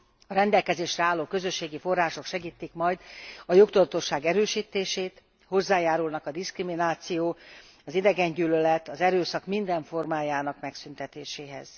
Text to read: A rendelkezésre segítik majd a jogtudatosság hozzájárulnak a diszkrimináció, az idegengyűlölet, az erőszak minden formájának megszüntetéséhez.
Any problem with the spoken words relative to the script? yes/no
yes